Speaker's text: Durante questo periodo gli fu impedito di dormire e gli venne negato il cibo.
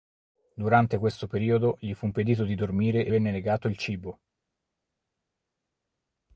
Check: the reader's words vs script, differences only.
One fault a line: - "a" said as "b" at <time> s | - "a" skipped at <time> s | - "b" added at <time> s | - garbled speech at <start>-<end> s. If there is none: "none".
- "gli" skipped at 3.1 s